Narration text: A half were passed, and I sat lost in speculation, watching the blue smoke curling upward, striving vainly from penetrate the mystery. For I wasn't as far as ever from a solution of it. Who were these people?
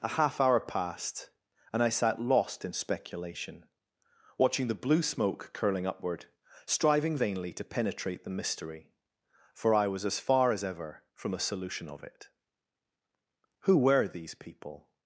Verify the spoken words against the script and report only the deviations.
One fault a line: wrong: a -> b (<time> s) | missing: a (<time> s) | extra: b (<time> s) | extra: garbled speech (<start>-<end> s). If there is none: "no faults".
wrong: were -> hour (0.4 s)
wrong: from -> to (7.5 s)
wrong: wasn't -> was (9.9 s)